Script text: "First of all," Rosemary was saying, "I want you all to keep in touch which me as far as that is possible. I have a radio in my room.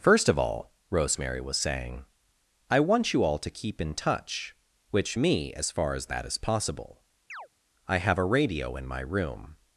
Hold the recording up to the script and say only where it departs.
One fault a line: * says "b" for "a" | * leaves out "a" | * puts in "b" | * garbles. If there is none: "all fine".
all fine